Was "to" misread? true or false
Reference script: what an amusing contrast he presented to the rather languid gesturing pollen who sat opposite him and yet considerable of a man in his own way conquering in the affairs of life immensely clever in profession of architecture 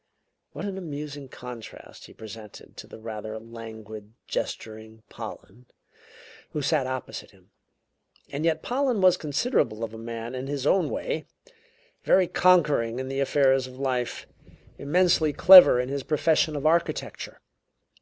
false